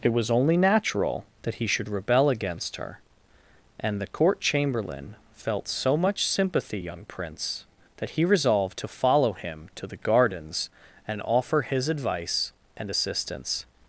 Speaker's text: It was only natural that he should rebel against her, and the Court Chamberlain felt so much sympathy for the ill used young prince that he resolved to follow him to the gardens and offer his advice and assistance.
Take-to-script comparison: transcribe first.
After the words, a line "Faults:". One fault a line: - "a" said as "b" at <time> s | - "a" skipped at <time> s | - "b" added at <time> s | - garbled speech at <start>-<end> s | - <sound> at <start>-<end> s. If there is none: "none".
It was only natural that he should rebel against her, and the Court Chamberlain felt so much sympathy young prince that he resolved to follow him to the gardens and offer his advice and assistance.
Faults:
- "for the ill used" skipped at 6.8 s